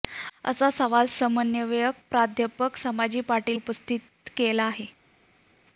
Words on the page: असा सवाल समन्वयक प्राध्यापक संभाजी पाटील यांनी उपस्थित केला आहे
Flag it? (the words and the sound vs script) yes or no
yes